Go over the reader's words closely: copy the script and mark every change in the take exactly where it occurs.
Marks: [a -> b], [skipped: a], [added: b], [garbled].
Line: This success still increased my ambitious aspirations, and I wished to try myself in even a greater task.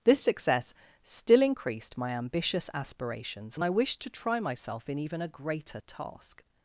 This success still increased my ambitious aspirations, and I wished to try myself in even a greater task.